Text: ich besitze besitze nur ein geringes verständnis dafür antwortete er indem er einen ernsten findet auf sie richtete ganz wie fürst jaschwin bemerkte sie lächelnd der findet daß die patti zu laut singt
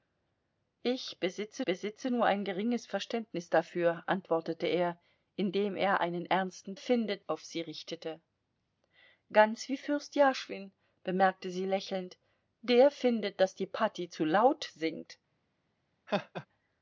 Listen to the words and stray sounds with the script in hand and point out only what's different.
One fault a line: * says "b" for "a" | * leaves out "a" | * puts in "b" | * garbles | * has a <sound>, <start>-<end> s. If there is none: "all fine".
* has a laugh, 16.1-16.5 s